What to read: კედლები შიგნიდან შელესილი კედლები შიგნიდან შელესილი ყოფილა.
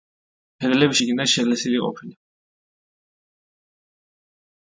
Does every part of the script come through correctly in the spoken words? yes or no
no